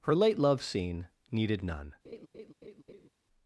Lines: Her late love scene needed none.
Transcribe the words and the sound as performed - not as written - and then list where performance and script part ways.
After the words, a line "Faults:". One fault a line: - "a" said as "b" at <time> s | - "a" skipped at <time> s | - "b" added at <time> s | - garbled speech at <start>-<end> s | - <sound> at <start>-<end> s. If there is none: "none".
Her late love scene needed none.
Faults:
- laugh at 2.0-3.1 s